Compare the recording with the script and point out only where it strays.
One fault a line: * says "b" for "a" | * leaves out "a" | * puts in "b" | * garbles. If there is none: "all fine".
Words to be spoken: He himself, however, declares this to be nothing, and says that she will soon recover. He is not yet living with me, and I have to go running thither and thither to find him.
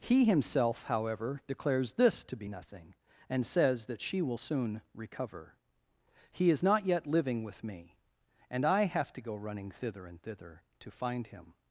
all fine